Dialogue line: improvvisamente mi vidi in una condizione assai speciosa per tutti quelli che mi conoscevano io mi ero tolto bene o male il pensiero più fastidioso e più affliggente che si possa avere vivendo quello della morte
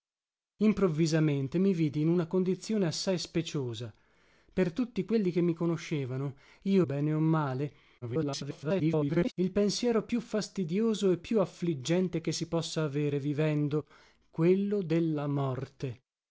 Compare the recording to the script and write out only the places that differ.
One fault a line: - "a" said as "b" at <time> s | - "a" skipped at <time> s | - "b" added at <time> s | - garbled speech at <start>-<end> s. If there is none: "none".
- "mi ero tolto" skipped at 6.8 s
- garbled speech at 8.0-9.3 s